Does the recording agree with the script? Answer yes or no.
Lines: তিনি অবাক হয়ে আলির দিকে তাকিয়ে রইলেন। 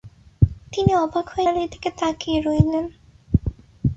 yes